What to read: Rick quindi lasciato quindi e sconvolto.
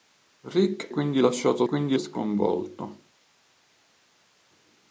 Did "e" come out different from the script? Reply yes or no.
no